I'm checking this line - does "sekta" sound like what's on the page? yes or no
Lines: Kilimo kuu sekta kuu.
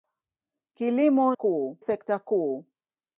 yes